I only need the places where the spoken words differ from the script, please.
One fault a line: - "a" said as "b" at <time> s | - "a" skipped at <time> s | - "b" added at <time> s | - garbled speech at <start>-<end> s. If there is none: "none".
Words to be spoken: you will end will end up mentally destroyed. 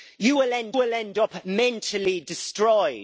none